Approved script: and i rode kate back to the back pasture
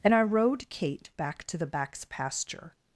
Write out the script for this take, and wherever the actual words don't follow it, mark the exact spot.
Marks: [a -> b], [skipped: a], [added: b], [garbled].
and i rode kate back to the [back -> backs] pasture